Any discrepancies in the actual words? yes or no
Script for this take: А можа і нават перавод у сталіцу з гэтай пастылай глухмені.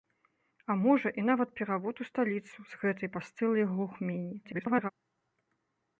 yes